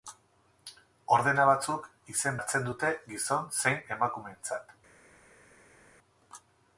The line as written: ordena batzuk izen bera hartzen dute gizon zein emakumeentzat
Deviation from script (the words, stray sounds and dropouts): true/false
true